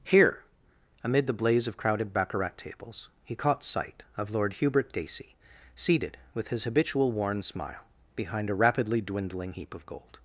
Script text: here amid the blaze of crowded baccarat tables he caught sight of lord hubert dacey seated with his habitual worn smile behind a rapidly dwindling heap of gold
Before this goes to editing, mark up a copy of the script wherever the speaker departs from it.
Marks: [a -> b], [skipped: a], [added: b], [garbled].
here amid the blaze of crowded baccarat tables he caught sight of lord hubert dacey seated with his habitual worn smile behind a rapidly dwindling heap of gold